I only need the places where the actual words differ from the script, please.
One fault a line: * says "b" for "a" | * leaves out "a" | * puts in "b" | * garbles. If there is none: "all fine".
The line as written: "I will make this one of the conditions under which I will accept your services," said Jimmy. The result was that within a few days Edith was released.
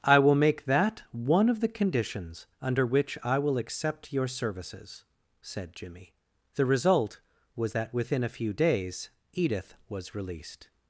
* says "that" for "this"